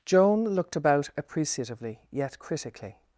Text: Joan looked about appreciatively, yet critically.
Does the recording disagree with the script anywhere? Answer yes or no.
no